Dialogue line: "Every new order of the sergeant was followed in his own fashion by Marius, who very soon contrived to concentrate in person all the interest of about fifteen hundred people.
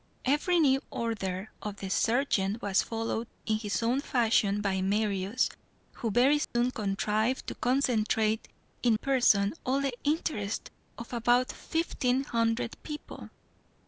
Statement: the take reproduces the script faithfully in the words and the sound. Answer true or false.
false